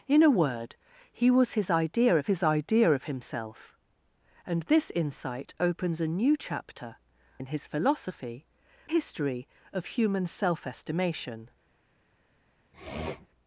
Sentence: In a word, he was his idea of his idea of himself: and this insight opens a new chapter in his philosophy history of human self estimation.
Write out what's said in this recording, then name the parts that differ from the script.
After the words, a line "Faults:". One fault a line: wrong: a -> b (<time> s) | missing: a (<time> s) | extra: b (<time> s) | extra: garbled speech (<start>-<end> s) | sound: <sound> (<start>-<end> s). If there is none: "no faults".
In a word, he was his idea of his idea of himself: and this insight opens a new chapter in his philosophy history of human self estimation.
Faults:
sound: sniff (12.7-13.3 s)